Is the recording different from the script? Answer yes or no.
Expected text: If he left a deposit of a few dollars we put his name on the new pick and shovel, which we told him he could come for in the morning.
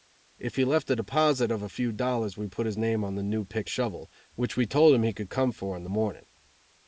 yes